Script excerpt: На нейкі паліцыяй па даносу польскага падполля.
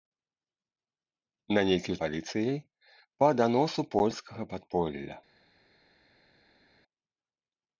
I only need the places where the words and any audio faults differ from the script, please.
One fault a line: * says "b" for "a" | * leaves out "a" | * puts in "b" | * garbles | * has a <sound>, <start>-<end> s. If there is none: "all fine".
all fine